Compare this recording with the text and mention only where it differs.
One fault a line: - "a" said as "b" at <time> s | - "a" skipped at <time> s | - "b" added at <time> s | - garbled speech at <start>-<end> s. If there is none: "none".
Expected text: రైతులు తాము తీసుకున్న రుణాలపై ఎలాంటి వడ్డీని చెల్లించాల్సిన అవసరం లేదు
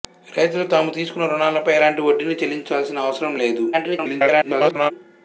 - garbled speech at 3.7-4.9 s